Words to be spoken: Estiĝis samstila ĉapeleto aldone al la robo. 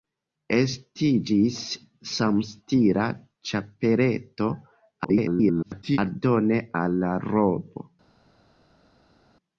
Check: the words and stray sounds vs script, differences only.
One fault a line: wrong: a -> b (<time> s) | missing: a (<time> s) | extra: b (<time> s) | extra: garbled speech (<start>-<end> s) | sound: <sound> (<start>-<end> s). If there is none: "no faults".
extra: garbled speech (5.0-6.0 s)